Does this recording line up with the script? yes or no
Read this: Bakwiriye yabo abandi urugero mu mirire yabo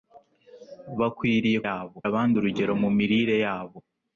yes